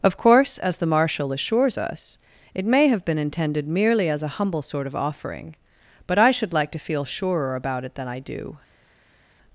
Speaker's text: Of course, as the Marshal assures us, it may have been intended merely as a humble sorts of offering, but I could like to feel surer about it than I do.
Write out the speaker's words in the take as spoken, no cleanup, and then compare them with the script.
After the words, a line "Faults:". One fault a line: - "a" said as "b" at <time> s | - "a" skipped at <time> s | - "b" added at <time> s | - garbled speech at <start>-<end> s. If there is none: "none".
Of course, as the Marshal assures us, it may have been intended merely as a humble sort of offering, but I should like to feel surer about it than I do.
Faults:
- "sorts" said as "sort" at 4.6 s
- "could" said as "should" at 6.3 s